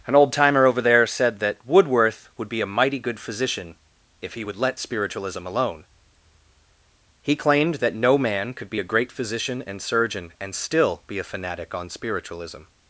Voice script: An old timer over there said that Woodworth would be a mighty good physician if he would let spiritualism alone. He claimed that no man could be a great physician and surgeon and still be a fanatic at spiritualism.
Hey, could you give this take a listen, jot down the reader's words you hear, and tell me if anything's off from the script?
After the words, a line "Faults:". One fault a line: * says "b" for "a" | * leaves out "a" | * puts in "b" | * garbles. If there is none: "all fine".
An old timer over there said that Woodworth would be a mighty good physician if he would let spiritualism alone. He claimed that no man could be a great physician and surgeon and still be a fanatic on spiritualism.
Faults:
* says "on" for "at"